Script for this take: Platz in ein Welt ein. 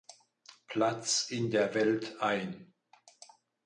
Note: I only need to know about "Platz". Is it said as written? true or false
true